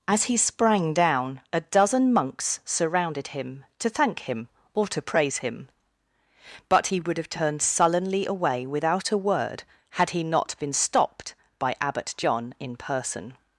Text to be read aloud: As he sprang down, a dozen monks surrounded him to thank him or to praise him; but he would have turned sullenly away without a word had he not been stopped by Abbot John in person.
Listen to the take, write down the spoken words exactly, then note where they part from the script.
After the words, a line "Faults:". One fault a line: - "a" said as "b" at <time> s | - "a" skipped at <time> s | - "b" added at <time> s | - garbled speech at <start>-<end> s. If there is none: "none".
As he sprang down, a dozen monks surrounded him to thank him or to praise him; but he would have turned sullenly away without a word had he not been stopped by Abbot John in person.
Faults:
none